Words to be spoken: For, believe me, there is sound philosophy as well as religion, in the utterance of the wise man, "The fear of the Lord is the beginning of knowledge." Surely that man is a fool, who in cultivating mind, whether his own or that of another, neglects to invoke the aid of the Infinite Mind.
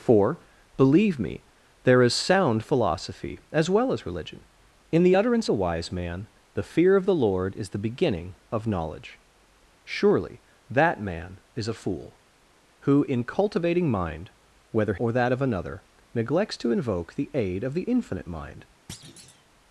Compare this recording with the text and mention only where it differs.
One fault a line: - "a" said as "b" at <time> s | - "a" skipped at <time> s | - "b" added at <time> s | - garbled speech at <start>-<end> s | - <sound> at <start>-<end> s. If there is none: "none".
- "of" skipped at 5.5 s
- "his own" skipped at 14.9 s
- thud at 18.9-19.4 s